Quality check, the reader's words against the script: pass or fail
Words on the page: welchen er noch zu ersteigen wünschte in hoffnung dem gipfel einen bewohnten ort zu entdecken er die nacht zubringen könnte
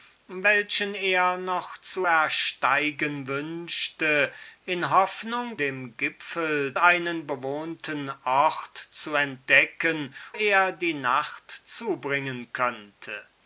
pass